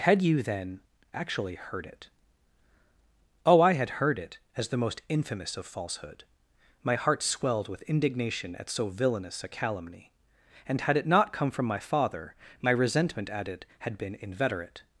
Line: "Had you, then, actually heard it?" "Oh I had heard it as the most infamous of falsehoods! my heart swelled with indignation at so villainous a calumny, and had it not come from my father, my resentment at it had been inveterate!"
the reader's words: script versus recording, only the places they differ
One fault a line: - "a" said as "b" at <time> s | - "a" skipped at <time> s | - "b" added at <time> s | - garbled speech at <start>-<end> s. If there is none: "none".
- "falsehoods" said as "falsehood" at 5.7 s